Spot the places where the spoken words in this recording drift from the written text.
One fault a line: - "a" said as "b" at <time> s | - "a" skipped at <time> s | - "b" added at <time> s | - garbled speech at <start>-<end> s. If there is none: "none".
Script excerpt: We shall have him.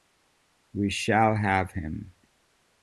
none